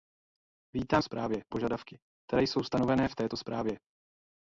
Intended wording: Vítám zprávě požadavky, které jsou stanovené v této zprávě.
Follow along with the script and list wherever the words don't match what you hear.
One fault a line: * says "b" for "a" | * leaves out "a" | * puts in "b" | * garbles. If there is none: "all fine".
all fine